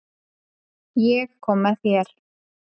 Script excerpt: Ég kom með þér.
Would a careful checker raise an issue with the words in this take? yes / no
no